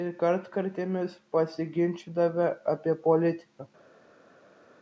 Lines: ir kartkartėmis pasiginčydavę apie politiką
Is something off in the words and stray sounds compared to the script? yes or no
no